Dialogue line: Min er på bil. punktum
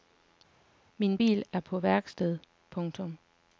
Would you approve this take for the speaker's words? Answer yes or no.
no